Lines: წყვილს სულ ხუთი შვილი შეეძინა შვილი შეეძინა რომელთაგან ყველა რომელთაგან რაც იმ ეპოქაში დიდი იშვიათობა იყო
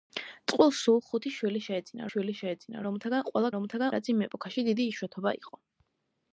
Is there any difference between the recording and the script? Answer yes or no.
no